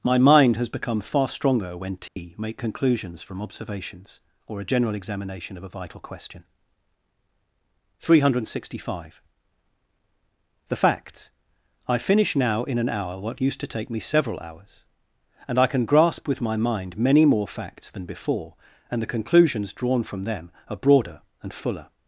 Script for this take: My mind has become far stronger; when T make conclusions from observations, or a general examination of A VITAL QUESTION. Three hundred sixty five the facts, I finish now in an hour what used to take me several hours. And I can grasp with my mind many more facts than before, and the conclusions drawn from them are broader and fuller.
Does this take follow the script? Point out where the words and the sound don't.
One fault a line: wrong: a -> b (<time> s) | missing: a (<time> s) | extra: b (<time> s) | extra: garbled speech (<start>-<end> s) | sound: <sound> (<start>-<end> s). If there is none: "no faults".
sound: dropout (2.1-2.2 s)